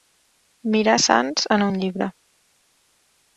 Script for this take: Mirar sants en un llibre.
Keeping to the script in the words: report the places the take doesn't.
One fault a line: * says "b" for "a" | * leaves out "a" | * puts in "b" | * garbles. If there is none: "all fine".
all fine